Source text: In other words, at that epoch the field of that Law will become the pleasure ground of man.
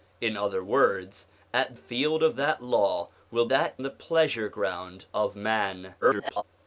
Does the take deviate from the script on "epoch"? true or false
true